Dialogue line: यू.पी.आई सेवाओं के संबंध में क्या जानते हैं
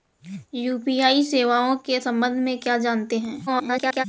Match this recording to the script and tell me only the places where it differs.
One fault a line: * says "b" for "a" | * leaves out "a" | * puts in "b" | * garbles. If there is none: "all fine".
* garbles